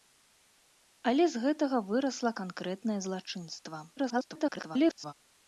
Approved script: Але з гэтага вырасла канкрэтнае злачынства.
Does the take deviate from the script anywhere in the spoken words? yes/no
yes